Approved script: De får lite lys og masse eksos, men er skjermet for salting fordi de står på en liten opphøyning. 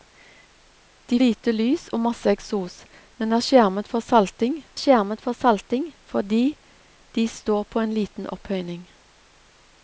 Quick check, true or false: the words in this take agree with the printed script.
false